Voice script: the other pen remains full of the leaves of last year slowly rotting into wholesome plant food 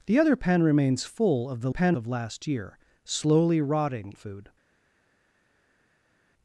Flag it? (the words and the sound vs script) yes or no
yes